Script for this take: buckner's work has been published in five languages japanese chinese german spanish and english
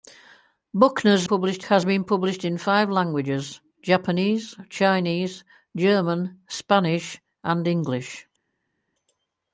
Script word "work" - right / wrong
wrong